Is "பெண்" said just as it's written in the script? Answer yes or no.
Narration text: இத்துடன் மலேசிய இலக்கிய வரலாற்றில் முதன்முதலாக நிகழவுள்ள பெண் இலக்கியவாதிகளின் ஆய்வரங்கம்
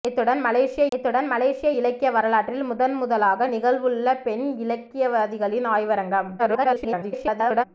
yes